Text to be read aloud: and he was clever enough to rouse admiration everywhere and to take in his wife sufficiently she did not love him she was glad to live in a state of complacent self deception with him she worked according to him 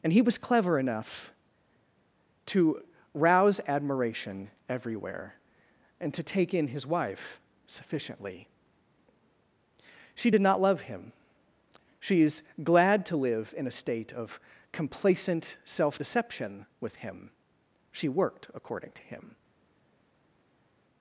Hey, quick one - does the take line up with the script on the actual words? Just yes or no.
no